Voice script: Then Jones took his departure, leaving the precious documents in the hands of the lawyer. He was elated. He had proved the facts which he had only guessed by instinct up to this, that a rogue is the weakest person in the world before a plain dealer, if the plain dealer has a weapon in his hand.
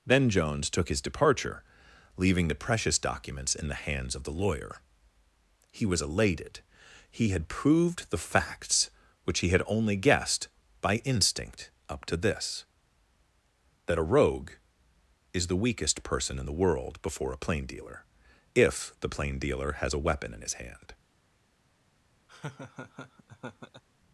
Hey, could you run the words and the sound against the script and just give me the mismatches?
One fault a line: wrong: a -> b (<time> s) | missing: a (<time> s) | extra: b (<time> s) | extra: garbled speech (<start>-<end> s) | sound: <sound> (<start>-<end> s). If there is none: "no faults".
sound: laugh (22.3-23.8 s)